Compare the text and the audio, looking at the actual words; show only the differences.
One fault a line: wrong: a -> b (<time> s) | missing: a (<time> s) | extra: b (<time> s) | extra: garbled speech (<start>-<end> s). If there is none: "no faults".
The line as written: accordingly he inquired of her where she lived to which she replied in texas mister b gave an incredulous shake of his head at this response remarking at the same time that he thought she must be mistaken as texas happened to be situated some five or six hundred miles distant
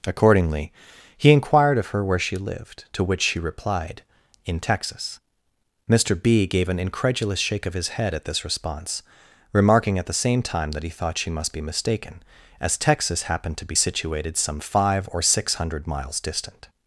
no faults